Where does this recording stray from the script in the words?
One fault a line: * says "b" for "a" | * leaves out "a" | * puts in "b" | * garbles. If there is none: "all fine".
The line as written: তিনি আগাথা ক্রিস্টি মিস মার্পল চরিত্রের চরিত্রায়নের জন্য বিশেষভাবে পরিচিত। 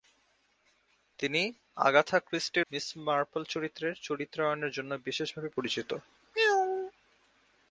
all fine